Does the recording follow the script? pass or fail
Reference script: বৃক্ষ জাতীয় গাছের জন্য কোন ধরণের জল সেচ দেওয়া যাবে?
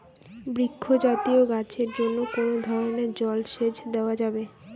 pass